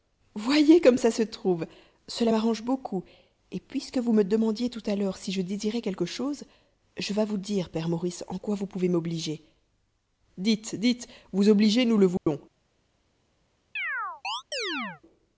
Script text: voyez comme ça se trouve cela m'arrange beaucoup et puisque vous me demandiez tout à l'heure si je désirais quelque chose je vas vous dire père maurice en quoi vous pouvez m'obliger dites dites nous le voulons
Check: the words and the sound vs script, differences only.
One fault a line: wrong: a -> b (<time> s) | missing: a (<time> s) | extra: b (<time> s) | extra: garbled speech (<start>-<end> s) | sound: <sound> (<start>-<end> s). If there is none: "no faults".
extra: vous obliger (11.3 s)
sound: dropout (12.2-12.3 s)
sound: chirp (13.8-15.0 s)